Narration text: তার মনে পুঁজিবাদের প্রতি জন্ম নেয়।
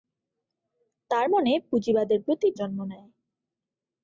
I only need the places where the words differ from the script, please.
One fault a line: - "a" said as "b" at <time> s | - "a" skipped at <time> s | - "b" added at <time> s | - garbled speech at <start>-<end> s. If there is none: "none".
none